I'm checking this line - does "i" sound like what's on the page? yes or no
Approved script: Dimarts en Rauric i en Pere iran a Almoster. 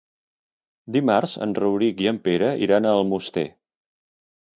yes